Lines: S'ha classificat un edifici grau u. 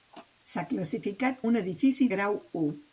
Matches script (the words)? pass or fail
pass